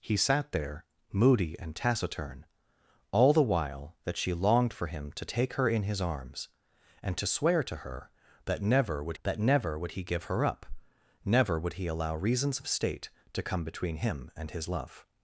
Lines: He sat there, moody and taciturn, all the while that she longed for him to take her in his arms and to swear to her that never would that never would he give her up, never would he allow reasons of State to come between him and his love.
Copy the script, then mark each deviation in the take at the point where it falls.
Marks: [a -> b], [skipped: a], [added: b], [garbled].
He sat there, moody and taciturn, all the while that she longed for him to take her in his arms and to swear to her that never would that never would he give her up, never would he allow reasons of State to come between him and his love.